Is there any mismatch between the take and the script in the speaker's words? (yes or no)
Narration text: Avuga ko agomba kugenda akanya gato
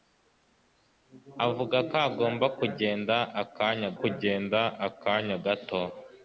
yes